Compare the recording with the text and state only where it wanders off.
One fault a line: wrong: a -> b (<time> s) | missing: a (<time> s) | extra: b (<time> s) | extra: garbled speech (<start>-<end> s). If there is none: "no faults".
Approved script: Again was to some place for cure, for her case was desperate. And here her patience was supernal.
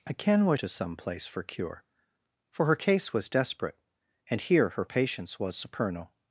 no faults